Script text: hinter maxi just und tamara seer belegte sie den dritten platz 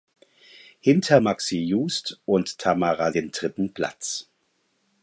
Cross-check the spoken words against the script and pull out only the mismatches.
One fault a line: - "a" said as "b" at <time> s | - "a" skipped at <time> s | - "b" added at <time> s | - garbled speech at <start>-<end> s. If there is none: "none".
- "seer belegte sie" skipped at 3.1 s